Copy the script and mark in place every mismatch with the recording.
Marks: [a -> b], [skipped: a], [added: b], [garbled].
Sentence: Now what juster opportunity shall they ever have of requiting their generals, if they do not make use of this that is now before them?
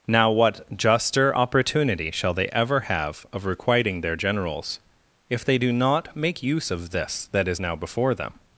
Now what juster opportunity shall they ever have of requiting their generals, if they do not make use of this that is now before them?